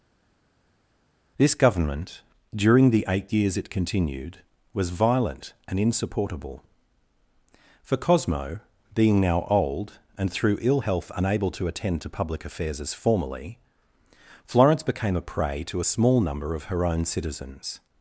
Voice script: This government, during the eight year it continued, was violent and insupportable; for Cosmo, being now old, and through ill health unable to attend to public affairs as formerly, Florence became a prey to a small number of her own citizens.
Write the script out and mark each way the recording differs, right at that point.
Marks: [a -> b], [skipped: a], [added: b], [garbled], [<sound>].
This government, during the eight [year -> years] it continued, was violent and insupportable; for Cosmo, being now old, and through ill health unable to attend to public affairs as formerly, Florence became a prey to a small number of her own citizens.